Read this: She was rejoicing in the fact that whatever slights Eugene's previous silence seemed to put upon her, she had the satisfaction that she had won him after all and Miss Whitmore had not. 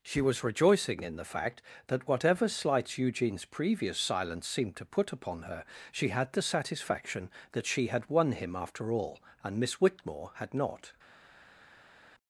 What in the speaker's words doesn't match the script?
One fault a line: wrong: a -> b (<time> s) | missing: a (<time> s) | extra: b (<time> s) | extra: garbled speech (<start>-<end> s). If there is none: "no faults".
no faults